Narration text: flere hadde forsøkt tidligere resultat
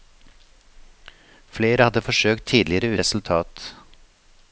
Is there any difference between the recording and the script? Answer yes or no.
no